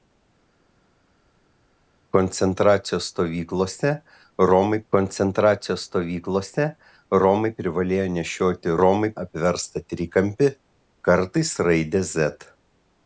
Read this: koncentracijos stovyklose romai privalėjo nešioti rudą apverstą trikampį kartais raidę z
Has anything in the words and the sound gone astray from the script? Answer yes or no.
yes